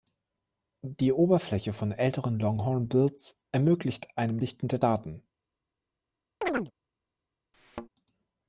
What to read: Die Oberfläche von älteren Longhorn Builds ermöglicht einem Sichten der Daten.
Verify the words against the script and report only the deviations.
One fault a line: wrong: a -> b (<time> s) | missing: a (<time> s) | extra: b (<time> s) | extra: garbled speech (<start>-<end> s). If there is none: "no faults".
no faults